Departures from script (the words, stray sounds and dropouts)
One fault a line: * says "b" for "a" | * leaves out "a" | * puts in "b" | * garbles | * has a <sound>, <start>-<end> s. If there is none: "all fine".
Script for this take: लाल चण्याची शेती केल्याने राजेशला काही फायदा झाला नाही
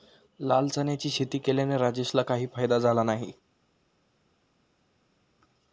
all fine